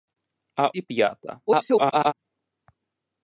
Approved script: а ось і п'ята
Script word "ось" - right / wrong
wrong